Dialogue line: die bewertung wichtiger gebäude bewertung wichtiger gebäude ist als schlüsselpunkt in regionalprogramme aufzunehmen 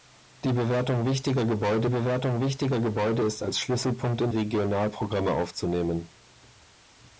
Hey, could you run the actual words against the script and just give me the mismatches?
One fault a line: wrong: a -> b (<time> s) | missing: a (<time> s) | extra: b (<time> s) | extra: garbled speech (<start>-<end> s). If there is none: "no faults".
no faults